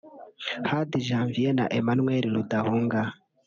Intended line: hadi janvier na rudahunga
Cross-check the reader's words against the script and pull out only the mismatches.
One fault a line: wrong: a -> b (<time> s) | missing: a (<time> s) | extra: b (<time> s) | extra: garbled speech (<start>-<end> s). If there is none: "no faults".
extra: emmanuel (1.8 s)